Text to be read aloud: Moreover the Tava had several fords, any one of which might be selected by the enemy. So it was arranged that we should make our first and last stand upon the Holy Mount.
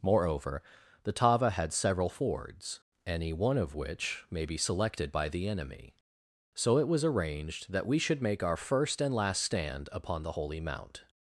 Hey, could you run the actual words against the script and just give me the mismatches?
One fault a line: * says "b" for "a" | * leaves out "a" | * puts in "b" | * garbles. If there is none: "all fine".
* says "may" for "might"